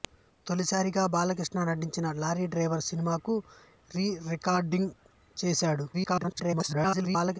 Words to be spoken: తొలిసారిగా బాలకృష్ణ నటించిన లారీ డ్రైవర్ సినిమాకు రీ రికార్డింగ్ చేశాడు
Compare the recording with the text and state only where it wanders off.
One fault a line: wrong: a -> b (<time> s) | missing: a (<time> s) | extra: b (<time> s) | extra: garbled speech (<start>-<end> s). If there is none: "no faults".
extra: garbled speech (5.9-7.4 s)